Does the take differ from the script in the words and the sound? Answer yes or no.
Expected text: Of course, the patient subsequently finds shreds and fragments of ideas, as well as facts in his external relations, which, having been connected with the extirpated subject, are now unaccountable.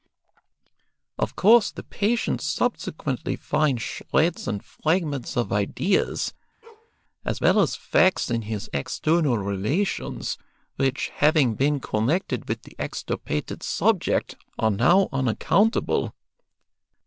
yes